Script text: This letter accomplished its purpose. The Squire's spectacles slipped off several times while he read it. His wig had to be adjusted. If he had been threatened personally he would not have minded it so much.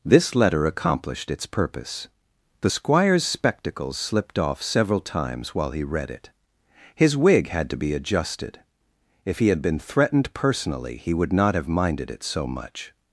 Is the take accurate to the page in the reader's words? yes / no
yes